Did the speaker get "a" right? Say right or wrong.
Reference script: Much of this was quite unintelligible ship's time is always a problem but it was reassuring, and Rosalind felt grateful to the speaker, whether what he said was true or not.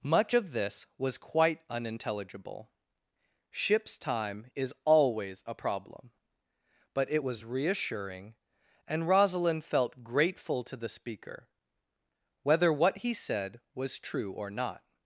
right